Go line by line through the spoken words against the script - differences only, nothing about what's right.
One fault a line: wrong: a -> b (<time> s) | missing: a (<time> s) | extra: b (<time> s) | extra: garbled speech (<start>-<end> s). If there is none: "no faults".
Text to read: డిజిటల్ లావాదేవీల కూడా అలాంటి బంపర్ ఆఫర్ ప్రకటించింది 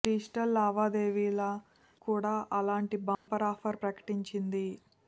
no faults